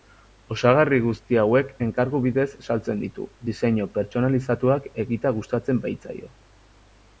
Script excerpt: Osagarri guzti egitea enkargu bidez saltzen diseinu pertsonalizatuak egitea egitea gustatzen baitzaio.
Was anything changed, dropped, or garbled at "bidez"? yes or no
no